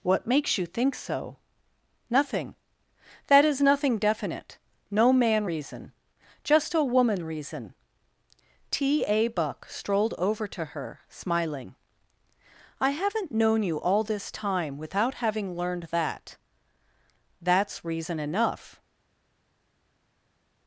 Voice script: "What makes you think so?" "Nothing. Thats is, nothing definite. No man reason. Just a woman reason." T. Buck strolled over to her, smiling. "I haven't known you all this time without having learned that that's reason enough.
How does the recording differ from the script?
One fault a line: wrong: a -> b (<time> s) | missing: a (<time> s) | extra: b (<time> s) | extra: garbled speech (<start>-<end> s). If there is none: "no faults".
wrong: Thats -> That (3.3 s)
extra: A (9.1 s)